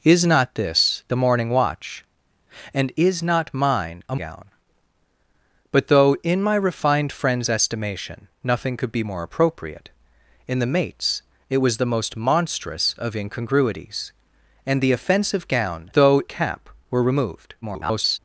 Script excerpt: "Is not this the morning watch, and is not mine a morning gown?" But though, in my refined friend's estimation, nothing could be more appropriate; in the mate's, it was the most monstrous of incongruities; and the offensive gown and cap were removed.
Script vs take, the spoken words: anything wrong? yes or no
yes